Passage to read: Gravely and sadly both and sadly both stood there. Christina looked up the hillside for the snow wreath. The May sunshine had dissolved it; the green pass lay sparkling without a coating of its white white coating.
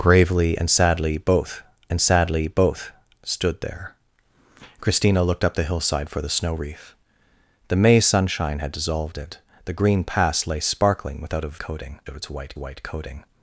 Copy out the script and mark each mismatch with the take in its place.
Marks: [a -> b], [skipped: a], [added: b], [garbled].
Gravely and sadly both and sadly both stood there. Christina looked up the hillside for the snow wreath. The May sunshine had dissolved it; the green pass lay sparkling without a coating of its white white coating.